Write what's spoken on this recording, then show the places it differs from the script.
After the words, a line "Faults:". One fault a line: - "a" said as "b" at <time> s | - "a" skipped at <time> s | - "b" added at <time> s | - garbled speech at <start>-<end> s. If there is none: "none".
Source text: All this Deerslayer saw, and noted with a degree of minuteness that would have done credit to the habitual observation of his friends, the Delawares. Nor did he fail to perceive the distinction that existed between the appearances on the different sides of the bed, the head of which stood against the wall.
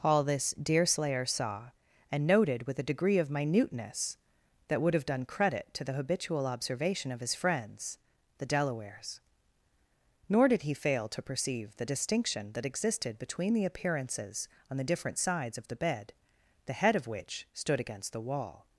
All this Deerslayer saw, and noted with a degree of minuteness that would have done credit to the habitual observation of his friends, the Delawares. Nor did he fail to perceive the distinction that existed between the appearances on the different sides of the bed, the head of which stood against the wall.
Faults:
none